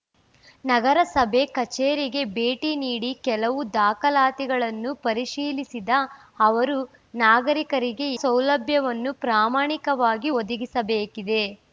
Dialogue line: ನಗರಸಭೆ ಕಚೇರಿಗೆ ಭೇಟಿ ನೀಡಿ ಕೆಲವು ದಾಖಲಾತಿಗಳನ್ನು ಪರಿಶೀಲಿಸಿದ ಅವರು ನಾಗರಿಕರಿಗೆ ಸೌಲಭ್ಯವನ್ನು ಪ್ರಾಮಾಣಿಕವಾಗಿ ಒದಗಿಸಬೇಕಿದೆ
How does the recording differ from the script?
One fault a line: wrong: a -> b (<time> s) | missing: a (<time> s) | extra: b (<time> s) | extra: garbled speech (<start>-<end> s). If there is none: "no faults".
no faults